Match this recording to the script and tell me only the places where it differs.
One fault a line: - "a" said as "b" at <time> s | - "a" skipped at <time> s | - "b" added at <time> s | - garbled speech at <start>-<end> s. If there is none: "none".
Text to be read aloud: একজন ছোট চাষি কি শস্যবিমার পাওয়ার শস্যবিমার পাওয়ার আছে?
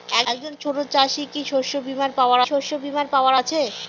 none